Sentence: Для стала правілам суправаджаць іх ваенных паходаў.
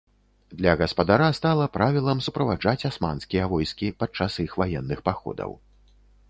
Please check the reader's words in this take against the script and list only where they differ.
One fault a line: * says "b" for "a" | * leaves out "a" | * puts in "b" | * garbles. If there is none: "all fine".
* puts in "гаспадара"
* puts in "асманскія войскі падчас"